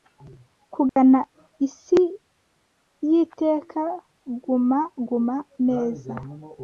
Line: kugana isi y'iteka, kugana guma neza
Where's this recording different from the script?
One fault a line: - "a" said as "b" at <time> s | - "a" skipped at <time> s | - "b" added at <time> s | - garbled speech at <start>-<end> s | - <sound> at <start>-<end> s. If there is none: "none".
- dropout at 0.9-1.0 s
- "kugana" said as "guma" at 4.4 s